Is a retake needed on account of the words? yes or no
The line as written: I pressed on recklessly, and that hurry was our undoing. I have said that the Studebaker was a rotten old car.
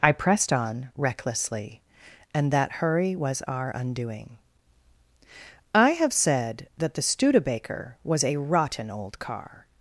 no